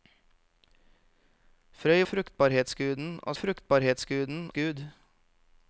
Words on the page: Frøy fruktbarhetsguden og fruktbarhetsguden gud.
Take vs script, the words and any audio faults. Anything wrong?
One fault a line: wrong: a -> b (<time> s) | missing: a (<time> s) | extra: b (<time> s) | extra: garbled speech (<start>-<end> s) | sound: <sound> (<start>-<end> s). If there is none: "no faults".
no faults